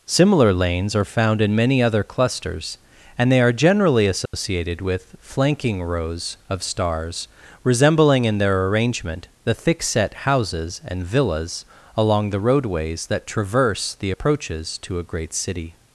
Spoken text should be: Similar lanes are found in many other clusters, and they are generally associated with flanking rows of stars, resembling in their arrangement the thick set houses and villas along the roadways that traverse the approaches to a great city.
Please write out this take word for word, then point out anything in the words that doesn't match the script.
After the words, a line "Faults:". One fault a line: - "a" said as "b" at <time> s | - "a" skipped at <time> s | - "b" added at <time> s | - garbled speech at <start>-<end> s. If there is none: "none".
Similar lanes are found in many other clusters, and they are generally associated with flanking rows of stars, resembling in their arrangement the thick set houses and villas along the roadways that traverse the approaches to a great city.
Faults:
none